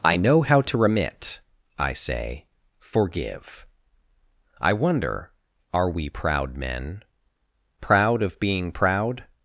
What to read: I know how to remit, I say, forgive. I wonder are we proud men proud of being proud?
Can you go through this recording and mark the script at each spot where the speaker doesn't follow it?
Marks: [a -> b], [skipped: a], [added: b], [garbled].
I know how to remit, I say, forgive. I wonder are we proud men proud of being proud?